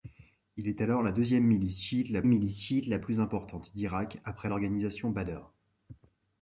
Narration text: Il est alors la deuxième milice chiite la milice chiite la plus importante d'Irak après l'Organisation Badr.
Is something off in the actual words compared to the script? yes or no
no